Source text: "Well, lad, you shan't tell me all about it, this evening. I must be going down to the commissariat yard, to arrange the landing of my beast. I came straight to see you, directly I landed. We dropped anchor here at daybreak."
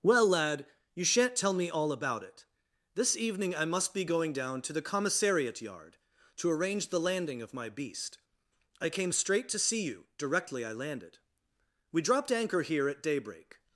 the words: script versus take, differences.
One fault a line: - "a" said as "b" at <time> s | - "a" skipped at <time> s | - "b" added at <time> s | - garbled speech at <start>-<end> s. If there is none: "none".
none